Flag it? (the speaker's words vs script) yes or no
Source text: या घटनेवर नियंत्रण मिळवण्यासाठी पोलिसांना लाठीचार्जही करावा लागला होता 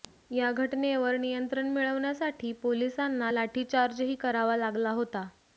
no